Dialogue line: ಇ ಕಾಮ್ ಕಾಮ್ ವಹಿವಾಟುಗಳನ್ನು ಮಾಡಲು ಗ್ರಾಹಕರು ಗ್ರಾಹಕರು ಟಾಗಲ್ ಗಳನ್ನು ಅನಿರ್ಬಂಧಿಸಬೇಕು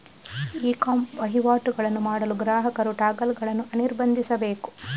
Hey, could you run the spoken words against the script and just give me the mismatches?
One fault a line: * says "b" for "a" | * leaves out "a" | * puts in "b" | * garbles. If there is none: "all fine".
* leaves out "ಕಾಮ್"
* leaves out "ಗ್ರಾಹಕರು"